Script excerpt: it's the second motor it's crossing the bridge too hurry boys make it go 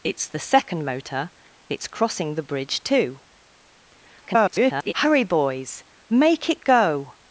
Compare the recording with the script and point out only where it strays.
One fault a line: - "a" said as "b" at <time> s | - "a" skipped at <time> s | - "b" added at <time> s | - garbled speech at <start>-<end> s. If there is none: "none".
- garbled speech at 4.2-4.9 s